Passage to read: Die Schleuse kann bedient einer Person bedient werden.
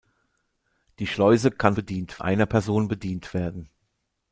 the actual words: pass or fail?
pass